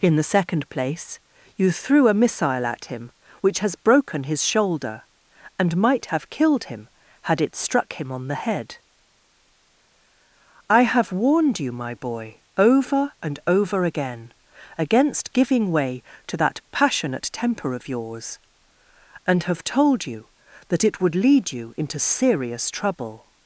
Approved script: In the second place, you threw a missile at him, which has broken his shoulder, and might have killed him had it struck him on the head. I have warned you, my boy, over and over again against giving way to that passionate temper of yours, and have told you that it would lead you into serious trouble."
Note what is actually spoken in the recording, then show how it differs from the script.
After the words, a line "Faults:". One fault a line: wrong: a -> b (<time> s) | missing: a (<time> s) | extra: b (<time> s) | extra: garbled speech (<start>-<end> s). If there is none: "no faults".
In the second place, you threw a missile at him, which has broken his shoulder, and might have killed him had it struck him on the head. I have warned you, my boy, over and over again against giving way to that passionate temper of yours, and have told you that it would lead you into serious trouble."
Faults:
no faults